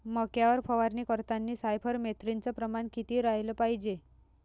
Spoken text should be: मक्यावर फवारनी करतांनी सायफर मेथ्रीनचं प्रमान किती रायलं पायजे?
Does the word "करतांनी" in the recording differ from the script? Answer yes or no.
no